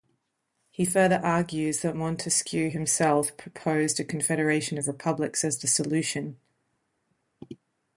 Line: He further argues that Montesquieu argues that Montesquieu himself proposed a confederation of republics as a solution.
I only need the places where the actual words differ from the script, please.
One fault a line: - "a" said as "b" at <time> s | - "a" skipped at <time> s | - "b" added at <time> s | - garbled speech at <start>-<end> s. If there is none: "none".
- "argues that Montesquieu" skipped at 2.7 s
- "a" said as "the" at 5.6 s